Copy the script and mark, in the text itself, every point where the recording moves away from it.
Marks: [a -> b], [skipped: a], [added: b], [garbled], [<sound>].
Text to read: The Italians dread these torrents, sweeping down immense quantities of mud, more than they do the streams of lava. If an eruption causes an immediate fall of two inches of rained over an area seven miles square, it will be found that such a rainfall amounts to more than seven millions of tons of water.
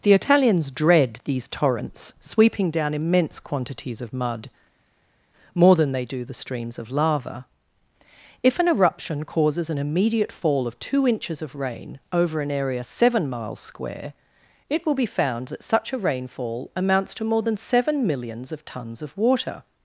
The Italians dread these torrents, sweeping down immense quantities of mud, more than they do the streams of lava. If an eruption causes an immediate fall of two inches of [rained -> rain] over an area seven miles square, it will be found that such a rainfall amounts to more than seven millions of tons of water.